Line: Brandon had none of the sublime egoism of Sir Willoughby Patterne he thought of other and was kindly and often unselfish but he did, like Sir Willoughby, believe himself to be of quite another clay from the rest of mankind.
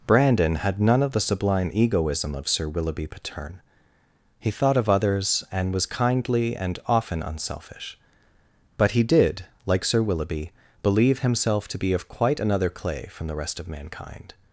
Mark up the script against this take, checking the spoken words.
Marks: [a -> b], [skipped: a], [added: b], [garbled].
Brandon had none of the sublime egoism of Sir Willoughby Patterne he thought of [other -> others] and was kindly and often unselfish but he did, like Sir Willoughby, believe himself to be of quite another clay from the rest of mankind.